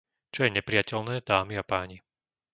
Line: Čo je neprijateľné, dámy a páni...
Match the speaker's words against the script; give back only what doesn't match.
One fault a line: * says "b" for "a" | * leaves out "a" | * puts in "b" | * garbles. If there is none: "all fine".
all fine